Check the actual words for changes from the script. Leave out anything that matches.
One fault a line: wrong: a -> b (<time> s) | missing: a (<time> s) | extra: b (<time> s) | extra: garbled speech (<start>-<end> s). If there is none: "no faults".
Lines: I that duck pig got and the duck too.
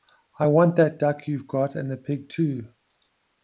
extra: want (0.5 s)
wrong: pig -> you've (1.3 s)
wrong: duck -> pig (2.0 s)